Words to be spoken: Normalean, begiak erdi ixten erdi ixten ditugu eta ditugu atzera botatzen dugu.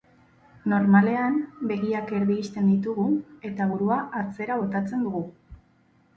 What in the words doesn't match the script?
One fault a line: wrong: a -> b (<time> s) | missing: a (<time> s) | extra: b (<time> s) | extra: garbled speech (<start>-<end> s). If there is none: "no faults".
missing: erdi ixten (2.7 s)
wrong: ditugu -> burua (3.7 s)